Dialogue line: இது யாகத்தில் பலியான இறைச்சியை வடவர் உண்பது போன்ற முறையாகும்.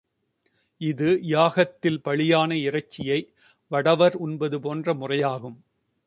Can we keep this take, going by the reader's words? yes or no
yes